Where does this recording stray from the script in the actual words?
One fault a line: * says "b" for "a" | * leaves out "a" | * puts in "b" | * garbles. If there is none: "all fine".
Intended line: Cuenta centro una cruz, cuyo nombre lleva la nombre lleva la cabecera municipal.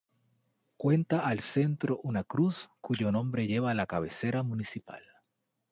* puts in "al"
* leaves out "nombre lleva la"